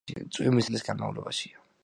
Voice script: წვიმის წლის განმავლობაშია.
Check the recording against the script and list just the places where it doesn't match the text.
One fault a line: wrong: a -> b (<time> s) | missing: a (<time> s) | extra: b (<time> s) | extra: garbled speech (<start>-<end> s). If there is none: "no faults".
no faults